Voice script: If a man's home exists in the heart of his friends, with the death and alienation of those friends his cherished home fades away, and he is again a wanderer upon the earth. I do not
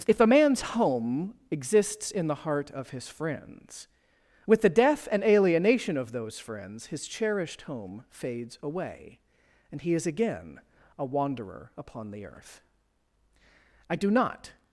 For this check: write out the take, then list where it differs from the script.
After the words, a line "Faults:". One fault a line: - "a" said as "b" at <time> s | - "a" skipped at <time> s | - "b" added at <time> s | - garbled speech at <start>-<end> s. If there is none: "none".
If a man's home exists in the heart of his friends, with the death and alienation of those friends his cherished home fades away, and he is again a wanderer upon the earth. I do not
Faults:
none